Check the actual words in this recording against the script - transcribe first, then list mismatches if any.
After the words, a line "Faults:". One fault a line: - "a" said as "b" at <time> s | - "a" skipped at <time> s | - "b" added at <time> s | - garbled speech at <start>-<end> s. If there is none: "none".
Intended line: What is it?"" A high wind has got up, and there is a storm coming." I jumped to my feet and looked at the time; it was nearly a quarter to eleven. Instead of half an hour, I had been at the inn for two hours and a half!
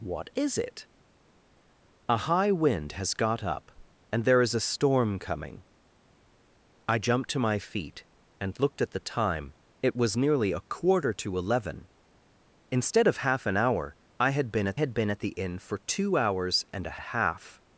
What is it?"" A high wind has got up, and there is a storm coming." I jumped to my feet and looked at the time; it was nearly a quarter to eleven. Instead of half an hour, I had been at had been at the inn for two hours and a a half!
Faults:
- "had been at" added at 14.7 s
- "a" added at 17.0 s